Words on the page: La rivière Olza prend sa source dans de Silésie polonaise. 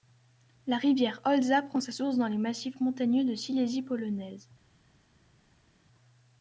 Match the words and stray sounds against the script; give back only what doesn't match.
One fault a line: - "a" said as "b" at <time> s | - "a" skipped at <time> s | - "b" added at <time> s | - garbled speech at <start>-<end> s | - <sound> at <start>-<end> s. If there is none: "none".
- "les massifs montagneux" added at 2.3 s